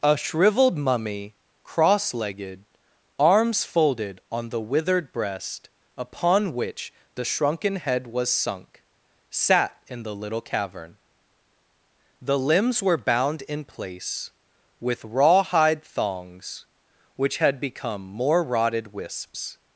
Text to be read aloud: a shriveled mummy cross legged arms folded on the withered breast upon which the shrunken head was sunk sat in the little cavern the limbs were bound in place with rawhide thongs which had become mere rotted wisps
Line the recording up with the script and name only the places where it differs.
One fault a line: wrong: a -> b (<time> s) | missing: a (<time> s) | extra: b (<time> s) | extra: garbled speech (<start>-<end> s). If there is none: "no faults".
wrong: mere -> more (18.0 s)